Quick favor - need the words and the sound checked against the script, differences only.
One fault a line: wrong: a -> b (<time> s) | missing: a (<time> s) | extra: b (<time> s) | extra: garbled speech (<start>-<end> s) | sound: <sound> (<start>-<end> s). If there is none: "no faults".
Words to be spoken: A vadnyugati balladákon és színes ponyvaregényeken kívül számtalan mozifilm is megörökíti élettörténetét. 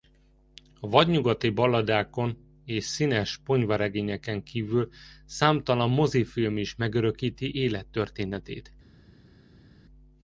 no faults